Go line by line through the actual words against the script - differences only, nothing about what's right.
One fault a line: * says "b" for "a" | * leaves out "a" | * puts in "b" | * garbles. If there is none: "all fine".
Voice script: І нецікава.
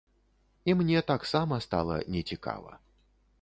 * puts in "мне таксама стала"